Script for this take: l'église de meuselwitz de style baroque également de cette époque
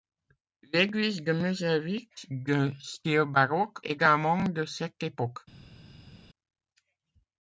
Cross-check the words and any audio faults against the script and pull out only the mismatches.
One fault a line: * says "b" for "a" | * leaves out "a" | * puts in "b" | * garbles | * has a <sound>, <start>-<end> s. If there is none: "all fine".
all fine